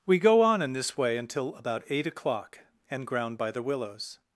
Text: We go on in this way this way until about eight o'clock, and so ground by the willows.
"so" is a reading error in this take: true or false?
true